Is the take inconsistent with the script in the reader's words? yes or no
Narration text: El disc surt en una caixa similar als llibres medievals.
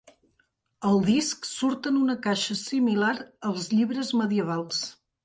no